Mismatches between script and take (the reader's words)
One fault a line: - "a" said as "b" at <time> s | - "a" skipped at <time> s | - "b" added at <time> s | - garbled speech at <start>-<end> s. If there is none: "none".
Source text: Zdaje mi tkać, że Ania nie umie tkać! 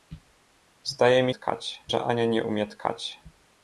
none